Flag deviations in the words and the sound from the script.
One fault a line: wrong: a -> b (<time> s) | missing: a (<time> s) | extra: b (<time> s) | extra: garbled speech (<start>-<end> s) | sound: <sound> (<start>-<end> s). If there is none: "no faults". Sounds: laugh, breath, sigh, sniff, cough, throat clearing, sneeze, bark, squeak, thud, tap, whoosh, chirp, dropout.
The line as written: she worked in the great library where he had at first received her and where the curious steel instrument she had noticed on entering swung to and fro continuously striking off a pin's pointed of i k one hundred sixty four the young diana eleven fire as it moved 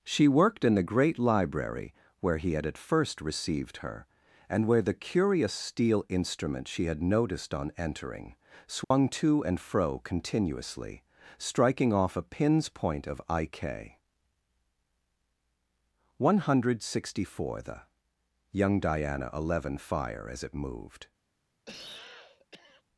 sound: dropout (8.8-8.9 s)
wrong: pointed -> point (12.7 s)
sound: cough (21.7-22.8 s)